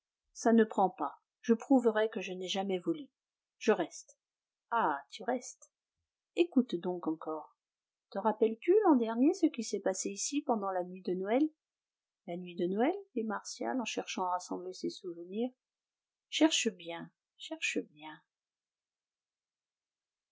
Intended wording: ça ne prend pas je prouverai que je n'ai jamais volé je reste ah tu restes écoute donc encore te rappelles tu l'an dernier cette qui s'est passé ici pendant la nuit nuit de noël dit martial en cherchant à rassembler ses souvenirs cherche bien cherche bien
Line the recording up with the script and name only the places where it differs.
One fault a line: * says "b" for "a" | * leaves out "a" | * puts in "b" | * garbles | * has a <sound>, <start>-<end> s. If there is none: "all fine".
* says "ce" for "cette"
* puts in "de noël la"